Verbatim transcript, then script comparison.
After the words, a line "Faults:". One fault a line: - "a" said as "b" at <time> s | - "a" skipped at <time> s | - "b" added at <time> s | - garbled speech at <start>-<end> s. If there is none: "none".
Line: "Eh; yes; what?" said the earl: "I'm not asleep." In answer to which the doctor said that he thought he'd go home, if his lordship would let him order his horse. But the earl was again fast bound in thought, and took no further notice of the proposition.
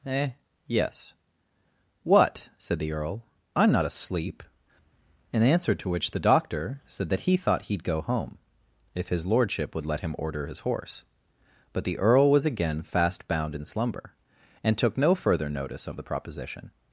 "Eh; yes; what?" said the earl: "I'm not asleep." In answer to which the doctor said that he thought he'd go home, if his lordship would let him order his horse. But the earl was again fast bound in slumber, and took no further notice of the proposition.
Faults:
- "thought" said as "slumber" at 13.6 s